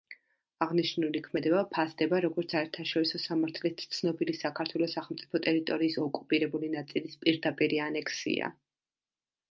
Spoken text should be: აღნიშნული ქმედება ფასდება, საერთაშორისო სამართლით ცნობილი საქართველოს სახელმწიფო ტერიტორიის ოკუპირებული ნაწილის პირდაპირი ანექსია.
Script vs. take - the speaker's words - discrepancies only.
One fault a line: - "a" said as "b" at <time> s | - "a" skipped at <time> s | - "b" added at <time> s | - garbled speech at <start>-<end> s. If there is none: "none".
- "როგორც" added at 2.2 s